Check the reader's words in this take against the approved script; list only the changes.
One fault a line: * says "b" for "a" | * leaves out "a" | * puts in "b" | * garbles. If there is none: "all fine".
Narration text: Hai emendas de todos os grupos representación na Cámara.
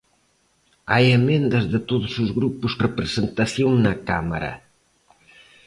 all fine